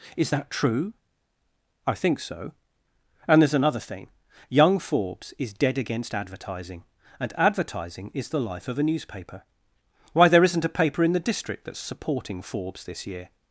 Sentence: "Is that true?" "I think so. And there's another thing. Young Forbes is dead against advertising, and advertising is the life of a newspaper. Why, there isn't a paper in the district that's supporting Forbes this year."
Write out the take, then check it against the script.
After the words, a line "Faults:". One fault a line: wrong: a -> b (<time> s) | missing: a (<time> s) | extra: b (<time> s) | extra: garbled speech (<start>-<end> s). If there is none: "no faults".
"Is that true?" "I think so. And there's another thing. Young Forbes is dead against advertising, and advertising is the life of a newspaper. Why, there isn't a paper in the district that's supporting Forbes this year."
Faults:
no faults